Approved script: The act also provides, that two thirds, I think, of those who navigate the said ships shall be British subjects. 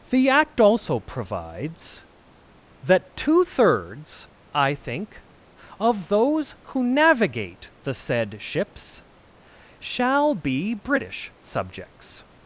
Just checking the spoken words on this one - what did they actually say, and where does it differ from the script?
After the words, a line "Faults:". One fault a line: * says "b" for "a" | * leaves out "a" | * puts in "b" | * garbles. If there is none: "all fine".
The act also provides, that two thirds, I think, of those who navigate the said ships shall be British subjects.
Faults:
all fine